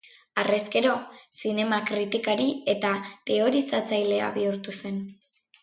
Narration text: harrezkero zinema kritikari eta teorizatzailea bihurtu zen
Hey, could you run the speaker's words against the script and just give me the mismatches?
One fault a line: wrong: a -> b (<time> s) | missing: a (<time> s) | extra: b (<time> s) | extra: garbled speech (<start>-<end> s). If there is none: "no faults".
no faults